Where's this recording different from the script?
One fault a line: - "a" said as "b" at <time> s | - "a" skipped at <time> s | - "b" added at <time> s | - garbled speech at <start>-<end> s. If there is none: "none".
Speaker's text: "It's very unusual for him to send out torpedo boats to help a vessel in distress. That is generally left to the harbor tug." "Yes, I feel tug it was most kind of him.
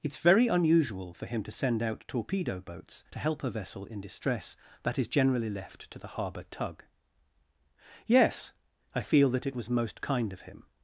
- "tug" said as "that" at 9.3 s